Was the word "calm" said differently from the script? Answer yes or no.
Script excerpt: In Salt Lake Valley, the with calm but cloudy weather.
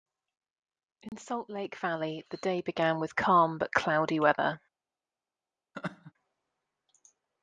no